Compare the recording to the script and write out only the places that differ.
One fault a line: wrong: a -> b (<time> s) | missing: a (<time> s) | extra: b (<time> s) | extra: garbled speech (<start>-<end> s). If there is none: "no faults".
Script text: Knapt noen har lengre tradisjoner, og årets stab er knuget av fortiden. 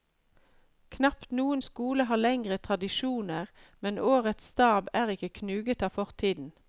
extra: skole (1.7 s)
wrong: og -> men (3.8 s)
extra: ikke (5.2 s)